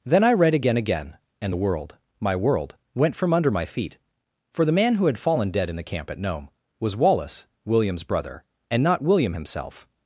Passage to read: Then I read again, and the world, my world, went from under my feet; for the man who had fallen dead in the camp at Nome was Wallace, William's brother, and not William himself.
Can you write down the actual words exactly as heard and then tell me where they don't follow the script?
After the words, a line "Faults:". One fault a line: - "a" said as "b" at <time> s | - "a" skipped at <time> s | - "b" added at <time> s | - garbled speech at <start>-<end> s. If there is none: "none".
Then I read again again, and the world, my world, went from under my feet; for the man who had fallen dead in the camp at Nome was Wallace, William's brother, and not William himself.
Faults:
- "again" added at 0.8 s